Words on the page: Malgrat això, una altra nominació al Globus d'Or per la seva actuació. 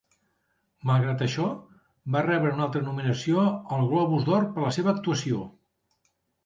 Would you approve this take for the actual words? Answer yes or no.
no